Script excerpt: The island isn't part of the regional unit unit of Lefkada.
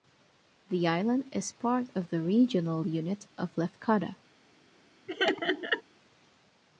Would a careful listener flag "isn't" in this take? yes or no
yes